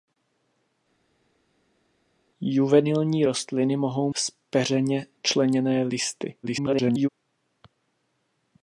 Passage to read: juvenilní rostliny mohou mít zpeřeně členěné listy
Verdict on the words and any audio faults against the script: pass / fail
fail